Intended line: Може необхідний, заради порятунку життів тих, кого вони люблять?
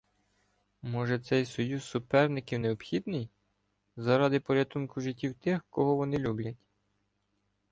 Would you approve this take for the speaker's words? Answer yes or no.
no